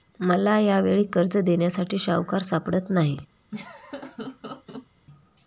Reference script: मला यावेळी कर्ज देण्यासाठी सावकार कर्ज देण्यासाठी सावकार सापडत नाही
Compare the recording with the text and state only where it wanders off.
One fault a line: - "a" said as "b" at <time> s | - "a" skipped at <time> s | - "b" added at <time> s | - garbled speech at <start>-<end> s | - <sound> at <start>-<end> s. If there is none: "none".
- "कर्ज देण्यासाठी सावकार" skipped at 2.4 s
- laugh at 3.5-4.9 s